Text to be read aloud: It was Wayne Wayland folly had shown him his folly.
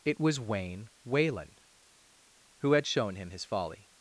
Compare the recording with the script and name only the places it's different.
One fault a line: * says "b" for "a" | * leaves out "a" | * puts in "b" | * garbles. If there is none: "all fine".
* says "who" for "folly"